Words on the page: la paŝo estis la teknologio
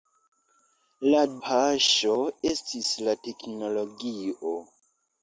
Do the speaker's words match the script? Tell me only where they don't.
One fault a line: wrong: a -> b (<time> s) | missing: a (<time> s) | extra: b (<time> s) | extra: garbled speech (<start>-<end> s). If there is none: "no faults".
no faults